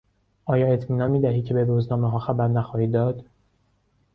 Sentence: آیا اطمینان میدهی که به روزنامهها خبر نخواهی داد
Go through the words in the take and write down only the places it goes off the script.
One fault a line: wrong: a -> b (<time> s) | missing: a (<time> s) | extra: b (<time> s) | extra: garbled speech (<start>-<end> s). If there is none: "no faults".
no faults